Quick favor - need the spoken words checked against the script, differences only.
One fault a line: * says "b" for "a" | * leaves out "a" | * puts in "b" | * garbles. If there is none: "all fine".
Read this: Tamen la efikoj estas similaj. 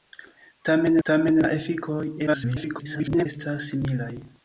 * puts in "tamen"
* garbles